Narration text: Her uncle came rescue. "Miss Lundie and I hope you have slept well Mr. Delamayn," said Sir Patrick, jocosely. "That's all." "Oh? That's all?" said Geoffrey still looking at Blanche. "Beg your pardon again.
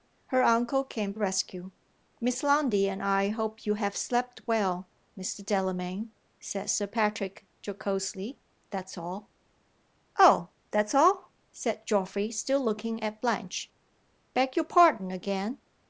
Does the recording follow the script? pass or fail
pass